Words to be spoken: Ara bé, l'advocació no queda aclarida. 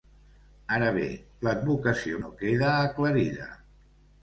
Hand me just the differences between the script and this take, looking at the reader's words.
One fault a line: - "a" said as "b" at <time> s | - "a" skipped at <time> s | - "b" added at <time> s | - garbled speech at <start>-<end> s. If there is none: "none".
none